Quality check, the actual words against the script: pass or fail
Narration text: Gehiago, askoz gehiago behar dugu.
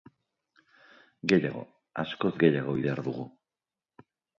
pass